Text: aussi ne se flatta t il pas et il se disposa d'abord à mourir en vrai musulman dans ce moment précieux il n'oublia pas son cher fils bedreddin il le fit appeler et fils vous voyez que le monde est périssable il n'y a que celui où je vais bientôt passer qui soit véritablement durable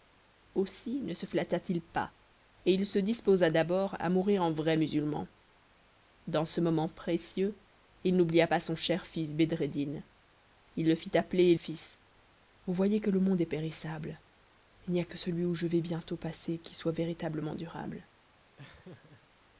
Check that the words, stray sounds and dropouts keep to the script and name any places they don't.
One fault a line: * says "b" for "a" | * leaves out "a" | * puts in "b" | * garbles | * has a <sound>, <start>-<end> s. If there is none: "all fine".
* has a laugh, 18.6-19.3 s